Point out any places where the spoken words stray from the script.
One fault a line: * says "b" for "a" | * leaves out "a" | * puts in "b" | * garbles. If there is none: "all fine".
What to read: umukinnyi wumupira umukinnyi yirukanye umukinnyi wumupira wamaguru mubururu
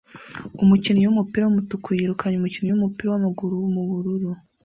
* says "wumutuku" for "umukinnyi"